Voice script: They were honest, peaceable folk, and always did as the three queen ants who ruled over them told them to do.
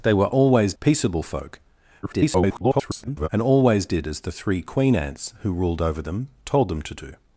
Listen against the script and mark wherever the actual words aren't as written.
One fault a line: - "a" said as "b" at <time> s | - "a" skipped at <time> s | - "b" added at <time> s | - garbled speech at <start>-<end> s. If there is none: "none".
- "honest" said as "always" at 0.3 s
- garbled speech at 2.0-3.3 s